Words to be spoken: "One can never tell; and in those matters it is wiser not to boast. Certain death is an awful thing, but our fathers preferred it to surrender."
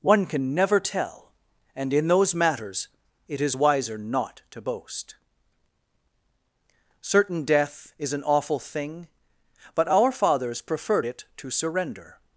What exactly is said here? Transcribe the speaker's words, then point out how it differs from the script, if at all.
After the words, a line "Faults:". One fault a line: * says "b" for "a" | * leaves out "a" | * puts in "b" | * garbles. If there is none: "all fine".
"One can never tell; and in those matters it is wiser not to boast. Certain death is an awful thing, but our fathers preferred it to surrender."
Faults:
all fine